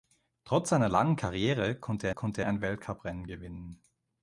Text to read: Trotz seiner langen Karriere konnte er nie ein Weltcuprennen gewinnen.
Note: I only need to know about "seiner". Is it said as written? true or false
true